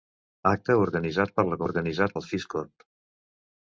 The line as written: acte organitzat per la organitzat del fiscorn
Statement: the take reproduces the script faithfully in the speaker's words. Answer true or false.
true